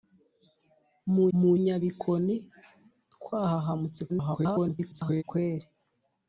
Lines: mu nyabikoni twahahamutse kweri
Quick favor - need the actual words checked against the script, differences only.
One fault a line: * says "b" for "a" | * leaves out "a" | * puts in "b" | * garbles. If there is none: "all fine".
* puts in "mu"
* garbles